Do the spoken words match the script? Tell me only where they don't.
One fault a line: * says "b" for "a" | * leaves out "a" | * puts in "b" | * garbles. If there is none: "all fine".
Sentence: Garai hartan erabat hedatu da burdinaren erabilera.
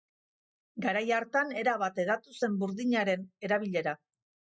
* says "zen" for "da"